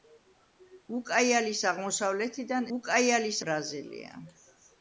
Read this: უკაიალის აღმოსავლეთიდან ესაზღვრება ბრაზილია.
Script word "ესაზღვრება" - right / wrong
wrong